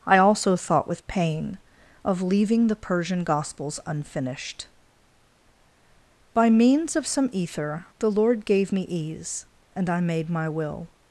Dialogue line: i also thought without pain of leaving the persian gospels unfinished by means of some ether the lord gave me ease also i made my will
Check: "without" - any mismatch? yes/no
yes